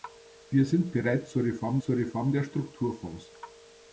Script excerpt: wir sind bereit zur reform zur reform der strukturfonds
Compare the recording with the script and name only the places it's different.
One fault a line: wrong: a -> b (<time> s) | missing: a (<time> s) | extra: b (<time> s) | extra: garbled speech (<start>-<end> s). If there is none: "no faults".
no faults